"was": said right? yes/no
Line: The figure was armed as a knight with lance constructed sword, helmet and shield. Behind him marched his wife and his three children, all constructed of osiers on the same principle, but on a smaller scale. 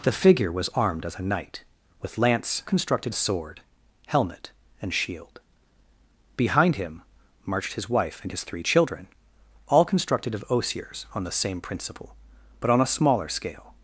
yes